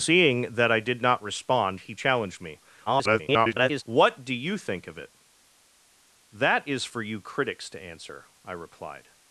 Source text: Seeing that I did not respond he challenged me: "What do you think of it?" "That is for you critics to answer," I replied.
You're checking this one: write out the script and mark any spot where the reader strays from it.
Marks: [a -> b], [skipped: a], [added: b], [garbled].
Seeing that I did not respond he challenged me: [garbled] "What do you think of it?" "That is for you critics to answer," I replied.